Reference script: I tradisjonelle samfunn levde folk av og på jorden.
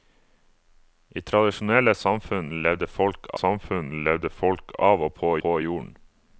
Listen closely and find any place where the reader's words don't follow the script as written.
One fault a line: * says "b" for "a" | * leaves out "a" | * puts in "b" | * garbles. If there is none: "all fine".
* puts in "samfunn levde folk"
* puts in "på"